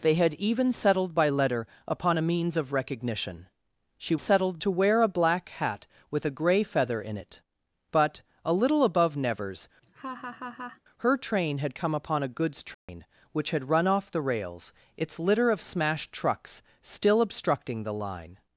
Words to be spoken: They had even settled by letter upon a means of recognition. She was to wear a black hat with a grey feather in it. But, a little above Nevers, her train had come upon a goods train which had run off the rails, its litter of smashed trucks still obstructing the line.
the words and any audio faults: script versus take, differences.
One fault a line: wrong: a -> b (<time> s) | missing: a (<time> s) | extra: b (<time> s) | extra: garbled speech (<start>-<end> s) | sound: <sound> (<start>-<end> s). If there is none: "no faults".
wrong: was -> settled (4.2 s)
sound: laugh (9.8-10.8 s)
sound: dropout (12.7-12.9 s)